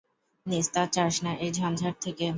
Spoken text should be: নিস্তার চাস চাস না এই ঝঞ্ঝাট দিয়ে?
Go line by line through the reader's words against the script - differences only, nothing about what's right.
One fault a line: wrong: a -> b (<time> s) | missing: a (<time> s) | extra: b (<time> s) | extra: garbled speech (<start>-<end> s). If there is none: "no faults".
missing: চাস (1.1 s)
wrong: দিয়ে -> থেকে (2.0 s)